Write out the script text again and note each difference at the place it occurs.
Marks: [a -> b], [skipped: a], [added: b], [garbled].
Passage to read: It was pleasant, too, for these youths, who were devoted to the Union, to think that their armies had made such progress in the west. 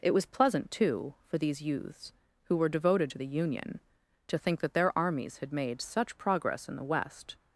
It was pleasant, too, for these youths, who were devoted to the Union, to think that their armies had made such progress in the west.